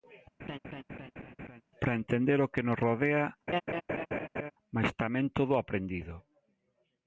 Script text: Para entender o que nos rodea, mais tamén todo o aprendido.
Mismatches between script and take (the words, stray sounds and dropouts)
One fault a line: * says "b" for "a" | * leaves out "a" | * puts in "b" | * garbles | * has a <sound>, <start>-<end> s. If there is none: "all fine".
* has a laugh, 0.4-1.6 s
* has a laugh, 3.5-4.5 s